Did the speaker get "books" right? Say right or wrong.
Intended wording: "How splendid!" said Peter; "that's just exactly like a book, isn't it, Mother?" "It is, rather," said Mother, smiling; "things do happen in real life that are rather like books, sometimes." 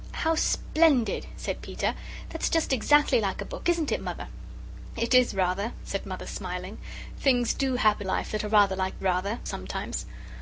wrong